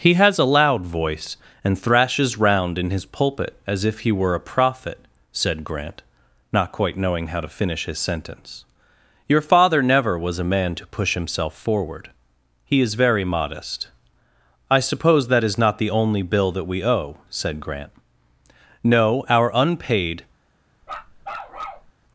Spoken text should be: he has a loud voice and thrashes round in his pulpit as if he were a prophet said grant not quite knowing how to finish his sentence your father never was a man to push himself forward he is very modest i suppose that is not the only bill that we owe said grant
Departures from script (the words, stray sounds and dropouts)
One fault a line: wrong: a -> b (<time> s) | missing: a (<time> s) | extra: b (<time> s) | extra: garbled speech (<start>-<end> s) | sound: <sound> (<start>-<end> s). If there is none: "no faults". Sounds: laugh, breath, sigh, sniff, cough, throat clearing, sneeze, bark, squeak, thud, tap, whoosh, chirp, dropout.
extra: no our unpaid (18.8 s)
sound: bark (20.8-21.9 s)